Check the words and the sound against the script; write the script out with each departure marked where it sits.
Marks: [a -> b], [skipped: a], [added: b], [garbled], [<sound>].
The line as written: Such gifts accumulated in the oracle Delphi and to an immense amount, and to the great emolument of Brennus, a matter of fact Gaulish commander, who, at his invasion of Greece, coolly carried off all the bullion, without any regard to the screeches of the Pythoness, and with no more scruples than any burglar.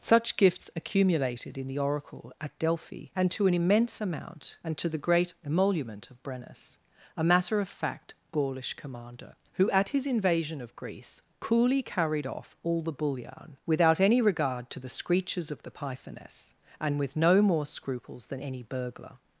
Such gifts accumulated in the oracle [added: at] Delphi and to an immense amount, and to the great emolument of Brennus, a matter of fact Gaulish commander, who, at his invasion of Greece, coolly carried off all the bullion, without any regard to the screeches of the Pythoness, and with no more scruples than any burglar.